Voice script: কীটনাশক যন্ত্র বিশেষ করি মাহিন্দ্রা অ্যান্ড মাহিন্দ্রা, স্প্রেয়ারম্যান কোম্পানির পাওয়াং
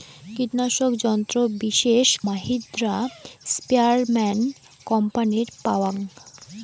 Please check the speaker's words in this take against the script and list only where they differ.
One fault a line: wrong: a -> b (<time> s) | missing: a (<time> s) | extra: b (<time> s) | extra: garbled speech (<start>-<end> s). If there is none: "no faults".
missing: করি মাহিন্দ্রা অ্যান্ড (2.1 s)